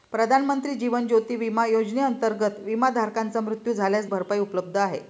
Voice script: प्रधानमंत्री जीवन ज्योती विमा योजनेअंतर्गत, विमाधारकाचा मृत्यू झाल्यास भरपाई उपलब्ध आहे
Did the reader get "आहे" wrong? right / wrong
right